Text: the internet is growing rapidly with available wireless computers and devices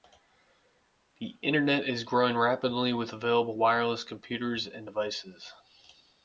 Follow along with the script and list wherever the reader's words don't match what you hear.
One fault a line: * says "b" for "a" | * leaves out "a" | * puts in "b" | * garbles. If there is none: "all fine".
all fine